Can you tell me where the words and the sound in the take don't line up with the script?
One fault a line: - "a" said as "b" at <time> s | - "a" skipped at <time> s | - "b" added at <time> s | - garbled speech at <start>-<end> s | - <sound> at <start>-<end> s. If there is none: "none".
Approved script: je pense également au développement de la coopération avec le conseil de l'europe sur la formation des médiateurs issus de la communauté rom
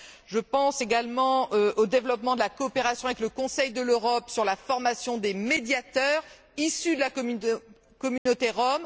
- dropout at 8.2-8.3 s